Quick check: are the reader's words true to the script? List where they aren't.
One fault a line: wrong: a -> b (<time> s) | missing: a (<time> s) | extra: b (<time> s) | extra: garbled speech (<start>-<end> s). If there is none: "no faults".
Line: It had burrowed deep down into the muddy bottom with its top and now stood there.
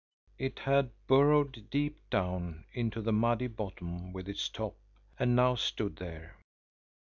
no faults